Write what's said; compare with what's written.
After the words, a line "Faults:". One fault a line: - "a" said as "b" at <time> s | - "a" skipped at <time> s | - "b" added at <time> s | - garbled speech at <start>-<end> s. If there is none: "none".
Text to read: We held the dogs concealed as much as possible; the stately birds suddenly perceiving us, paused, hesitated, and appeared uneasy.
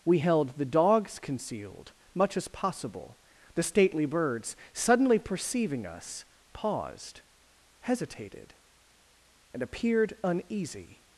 We held the dogs concealed much as possible; the stately birds suddenly perceiving us, paused, hesitated, and appeared uneasy.
Faults:
- "as" skipped at 1.9 s